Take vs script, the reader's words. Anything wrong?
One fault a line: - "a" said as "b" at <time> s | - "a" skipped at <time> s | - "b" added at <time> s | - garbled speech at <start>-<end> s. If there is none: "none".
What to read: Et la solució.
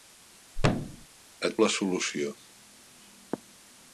none